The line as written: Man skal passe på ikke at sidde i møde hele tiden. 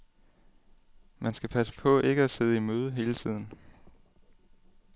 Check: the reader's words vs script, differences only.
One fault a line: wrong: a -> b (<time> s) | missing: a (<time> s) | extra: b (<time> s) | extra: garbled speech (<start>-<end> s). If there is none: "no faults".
no faults